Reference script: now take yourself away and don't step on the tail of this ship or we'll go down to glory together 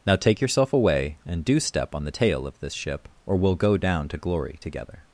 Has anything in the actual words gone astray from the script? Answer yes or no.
yes